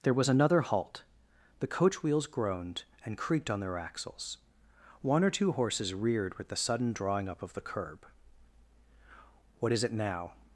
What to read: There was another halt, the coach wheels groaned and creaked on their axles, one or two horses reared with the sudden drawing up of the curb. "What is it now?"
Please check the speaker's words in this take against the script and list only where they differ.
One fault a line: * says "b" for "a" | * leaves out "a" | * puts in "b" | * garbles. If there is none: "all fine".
all fine